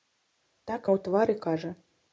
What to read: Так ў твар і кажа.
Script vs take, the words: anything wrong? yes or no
no